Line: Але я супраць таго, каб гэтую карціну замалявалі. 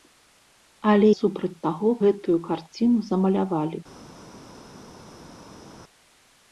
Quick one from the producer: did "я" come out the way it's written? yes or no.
no